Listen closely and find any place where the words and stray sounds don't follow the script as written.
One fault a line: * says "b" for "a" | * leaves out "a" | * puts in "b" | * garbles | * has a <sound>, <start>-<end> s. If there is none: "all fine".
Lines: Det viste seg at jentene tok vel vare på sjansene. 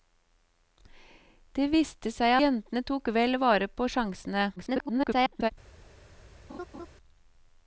* leaves out "at"
* garbles
* has a laugh, 6.5-6.9 s